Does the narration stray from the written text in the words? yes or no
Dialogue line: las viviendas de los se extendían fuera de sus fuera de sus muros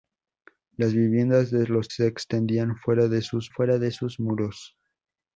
no